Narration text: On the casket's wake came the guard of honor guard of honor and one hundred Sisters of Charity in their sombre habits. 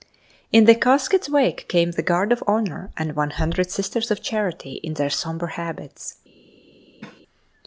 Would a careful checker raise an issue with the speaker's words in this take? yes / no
yes